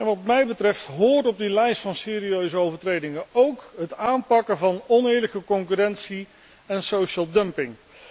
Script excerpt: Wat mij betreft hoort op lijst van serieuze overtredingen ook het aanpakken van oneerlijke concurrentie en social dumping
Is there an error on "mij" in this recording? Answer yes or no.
no